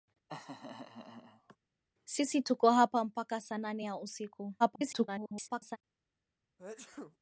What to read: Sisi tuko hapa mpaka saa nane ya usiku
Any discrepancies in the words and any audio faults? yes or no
yes